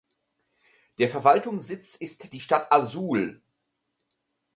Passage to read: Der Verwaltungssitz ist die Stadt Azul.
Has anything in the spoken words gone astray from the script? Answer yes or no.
no